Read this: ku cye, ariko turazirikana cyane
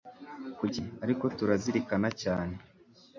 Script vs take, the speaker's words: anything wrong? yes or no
no